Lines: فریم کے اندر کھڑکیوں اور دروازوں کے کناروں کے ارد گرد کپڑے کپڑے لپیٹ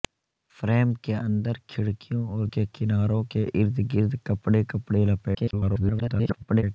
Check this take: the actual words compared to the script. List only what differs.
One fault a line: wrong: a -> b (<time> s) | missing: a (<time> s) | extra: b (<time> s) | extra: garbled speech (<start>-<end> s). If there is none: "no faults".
missing: دروازوں (2.5 s)
extra: garbled speech (5.3-6.6 s)